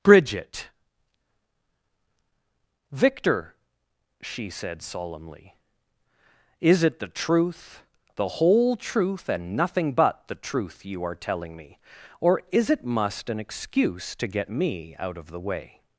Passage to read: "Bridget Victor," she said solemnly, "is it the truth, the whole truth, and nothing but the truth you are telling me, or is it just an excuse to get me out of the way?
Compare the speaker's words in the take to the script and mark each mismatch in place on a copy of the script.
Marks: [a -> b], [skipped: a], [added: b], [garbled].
"Bridget Victor," she said solemnly, "is it the truth, the whole truth, and nothing but the truth you are telling me, or is it [just -> must] an excuse to get me out of the way?